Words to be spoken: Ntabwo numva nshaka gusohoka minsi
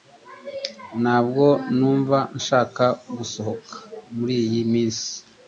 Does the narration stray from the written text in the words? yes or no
yes